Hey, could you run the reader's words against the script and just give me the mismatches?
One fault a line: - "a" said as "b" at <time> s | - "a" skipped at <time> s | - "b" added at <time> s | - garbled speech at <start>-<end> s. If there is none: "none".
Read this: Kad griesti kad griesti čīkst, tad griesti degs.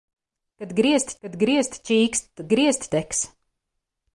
none